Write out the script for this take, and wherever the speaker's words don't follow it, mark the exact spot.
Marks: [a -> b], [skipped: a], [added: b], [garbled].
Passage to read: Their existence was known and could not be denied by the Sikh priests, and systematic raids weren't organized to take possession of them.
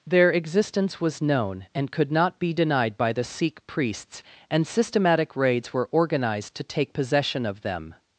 Their existence was known and could not be denied by the Sikh priests, and systematic raids [weren't -> were] organized to take possession of them.